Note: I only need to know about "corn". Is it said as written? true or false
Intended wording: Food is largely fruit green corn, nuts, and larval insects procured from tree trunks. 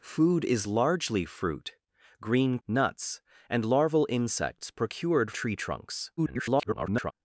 false